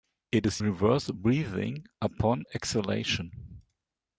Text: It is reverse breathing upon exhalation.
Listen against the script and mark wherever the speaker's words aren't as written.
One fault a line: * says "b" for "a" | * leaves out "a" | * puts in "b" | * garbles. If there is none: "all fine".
all fine